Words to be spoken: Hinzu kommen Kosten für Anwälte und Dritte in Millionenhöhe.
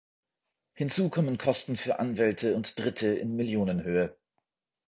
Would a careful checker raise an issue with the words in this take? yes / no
no